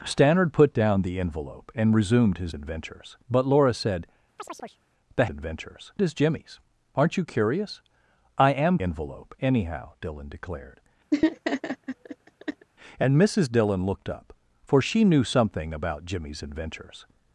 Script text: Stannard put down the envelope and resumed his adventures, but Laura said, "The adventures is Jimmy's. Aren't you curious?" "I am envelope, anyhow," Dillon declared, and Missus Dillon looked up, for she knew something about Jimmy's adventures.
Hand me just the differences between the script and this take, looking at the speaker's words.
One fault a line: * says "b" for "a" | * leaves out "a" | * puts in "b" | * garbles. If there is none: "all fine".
all fine